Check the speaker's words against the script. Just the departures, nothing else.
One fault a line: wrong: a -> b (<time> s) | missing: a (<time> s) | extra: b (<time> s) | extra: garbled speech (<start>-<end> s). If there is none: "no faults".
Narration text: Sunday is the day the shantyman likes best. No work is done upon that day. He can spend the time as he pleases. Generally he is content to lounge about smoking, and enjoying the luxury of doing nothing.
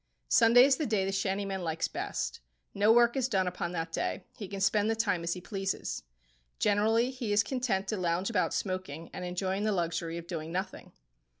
no faults